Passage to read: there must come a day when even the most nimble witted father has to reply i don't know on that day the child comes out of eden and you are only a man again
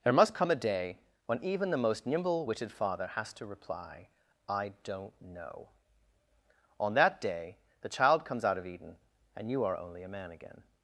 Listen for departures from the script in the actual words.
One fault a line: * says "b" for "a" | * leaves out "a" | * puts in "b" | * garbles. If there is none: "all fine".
all fine